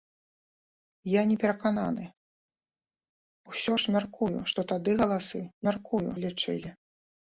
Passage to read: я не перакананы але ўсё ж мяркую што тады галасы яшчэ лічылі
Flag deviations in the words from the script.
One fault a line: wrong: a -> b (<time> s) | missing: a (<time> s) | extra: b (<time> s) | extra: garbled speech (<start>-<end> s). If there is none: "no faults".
missing: але (2.0 s)
wrong: яшчэ -> мяркую (5.7 s)